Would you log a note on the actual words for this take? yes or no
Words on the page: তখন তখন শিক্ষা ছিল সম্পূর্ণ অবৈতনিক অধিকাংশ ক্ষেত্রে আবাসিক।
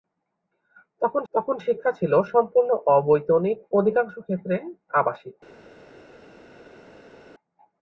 no